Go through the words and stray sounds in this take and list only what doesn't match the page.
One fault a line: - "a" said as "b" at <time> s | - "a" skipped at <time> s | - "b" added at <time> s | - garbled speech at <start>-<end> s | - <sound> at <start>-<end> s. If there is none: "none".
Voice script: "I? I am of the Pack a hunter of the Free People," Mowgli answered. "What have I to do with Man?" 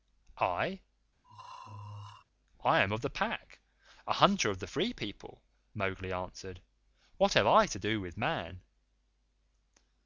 - throat clearing at 1.2-2.2 s